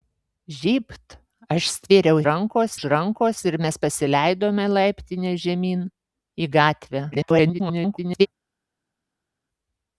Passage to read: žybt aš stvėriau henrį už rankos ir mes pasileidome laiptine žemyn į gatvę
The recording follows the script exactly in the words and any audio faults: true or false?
false